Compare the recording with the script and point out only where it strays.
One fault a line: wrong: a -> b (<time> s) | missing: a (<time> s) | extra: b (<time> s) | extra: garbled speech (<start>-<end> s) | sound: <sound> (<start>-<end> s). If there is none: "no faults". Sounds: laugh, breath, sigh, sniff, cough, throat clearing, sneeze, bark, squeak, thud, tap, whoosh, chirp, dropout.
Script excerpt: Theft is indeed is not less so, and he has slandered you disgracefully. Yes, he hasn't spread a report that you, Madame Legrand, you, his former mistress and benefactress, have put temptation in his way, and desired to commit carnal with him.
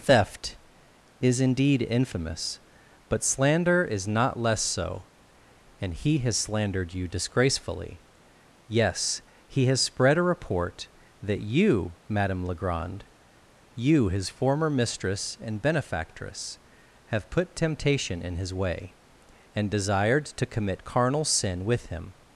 extra: infamous but slander (1.9 s)
wrong: hasn't -> has (9.7 s)
extra: sin (21.2 s)